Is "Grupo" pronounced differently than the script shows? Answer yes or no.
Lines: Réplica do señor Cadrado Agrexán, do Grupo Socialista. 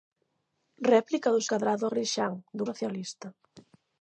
yes